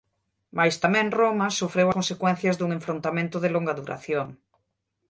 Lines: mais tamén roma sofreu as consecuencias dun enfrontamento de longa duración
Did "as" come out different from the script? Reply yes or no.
yes